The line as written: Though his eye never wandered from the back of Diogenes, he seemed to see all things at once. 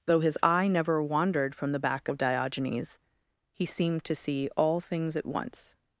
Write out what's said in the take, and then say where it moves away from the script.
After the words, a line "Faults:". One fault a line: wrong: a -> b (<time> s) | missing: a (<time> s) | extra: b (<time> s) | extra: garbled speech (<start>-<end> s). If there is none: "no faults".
Though his eye never wandered from the back of Diogenes, he seemed to see all things at once.
Faults:
no faults